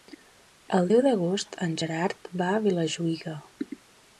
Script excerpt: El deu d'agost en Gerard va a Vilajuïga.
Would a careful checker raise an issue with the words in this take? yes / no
no